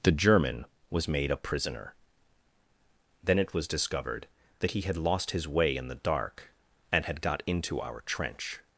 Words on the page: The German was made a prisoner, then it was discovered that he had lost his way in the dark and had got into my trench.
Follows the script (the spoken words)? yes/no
no